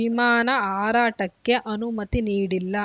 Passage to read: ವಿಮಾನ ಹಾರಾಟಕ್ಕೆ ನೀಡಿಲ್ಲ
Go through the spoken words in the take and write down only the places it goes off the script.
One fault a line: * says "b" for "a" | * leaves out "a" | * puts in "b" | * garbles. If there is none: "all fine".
* puts in "ಅನುಮತಿ"